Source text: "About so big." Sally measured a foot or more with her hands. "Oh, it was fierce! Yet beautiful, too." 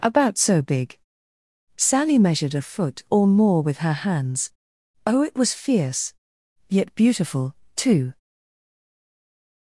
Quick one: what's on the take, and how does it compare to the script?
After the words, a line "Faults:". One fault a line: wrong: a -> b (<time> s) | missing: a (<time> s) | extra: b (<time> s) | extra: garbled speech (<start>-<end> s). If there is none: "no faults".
"About so big." Sally measured a foot or more with her hands. "Oh, it was fierce! Yet beautiful, too."
Faults:
no faults